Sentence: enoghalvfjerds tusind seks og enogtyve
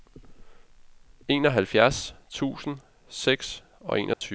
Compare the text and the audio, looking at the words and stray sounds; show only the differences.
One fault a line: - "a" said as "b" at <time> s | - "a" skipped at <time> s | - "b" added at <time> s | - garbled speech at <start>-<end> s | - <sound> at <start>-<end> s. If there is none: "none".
- dropout at 4.1-4.2 s